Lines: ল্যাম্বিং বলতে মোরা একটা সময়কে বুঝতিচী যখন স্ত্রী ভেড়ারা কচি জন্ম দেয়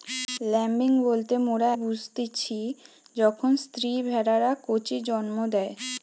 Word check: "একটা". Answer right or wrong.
wrong